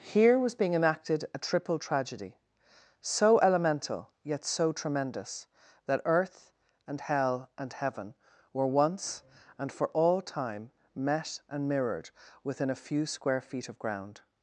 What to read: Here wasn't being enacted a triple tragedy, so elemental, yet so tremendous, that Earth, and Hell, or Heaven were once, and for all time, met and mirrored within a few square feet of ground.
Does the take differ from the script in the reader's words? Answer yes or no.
yes